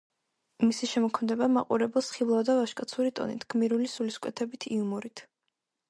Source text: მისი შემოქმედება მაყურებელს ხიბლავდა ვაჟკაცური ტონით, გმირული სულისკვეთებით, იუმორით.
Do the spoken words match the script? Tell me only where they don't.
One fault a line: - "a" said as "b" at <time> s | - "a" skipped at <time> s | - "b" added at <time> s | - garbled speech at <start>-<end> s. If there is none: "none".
none